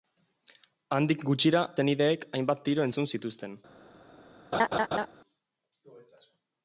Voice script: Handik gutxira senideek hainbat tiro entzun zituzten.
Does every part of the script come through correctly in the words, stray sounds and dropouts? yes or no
no